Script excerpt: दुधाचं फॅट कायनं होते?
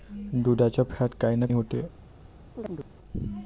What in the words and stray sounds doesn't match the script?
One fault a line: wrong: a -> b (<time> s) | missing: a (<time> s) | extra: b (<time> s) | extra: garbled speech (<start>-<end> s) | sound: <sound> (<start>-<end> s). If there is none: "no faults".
sound: chirp (2.6-2.9 s)